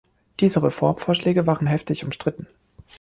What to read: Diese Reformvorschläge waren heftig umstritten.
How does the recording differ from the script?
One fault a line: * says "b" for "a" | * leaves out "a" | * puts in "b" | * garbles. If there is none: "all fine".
all fine